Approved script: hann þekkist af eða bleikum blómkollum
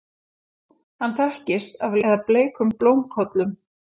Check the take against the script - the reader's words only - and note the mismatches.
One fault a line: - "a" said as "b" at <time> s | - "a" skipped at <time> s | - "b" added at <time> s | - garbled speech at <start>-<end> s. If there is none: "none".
none